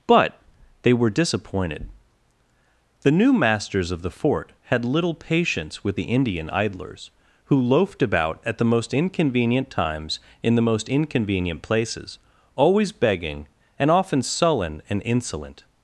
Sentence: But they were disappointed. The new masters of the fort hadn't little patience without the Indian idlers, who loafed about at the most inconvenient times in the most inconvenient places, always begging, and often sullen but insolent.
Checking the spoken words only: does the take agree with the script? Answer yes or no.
no